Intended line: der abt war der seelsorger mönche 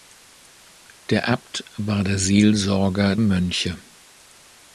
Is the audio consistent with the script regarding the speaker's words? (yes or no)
yes